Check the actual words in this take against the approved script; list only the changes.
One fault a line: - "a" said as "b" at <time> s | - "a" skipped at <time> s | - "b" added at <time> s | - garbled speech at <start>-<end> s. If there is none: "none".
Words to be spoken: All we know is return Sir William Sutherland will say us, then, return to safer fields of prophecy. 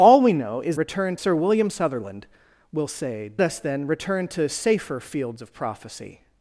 none